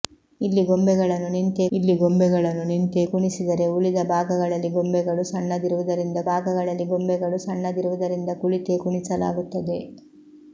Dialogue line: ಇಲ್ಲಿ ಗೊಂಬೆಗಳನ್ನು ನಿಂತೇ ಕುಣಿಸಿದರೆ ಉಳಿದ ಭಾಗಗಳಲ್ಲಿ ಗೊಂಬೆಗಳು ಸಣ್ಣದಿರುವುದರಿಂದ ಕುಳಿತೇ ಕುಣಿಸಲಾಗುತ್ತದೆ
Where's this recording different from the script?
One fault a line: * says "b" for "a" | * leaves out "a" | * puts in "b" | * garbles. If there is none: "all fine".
* puts in "ಇಲ್ಲಿ ಗೊಂಬೆಗಳನ್ನು ನಿಂತೇ"
* puts in "ಭಾಗಗಳಲ್ಲಿ ಗೊಂಬೆಗಳು ಸಣ್ಣದಿರುವುದರಿಂದ"